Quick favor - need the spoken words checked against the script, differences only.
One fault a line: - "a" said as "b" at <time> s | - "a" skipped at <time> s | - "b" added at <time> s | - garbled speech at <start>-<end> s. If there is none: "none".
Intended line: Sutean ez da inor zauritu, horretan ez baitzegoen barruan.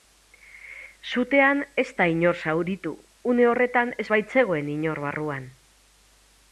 - "une" added at 3.3 s
- "inor" added at 4.8 s